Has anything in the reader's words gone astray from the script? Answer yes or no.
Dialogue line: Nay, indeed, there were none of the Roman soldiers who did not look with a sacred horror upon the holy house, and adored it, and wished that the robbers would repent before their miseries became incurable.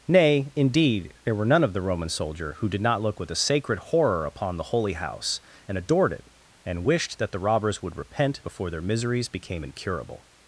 yes